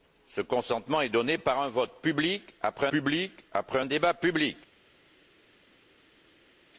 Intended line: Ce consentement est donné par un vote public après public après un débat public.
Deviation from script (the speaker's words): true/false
false